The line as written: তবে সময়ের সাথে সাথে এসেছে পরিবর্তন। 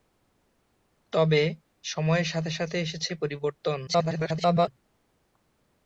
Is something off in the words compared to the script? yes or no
yes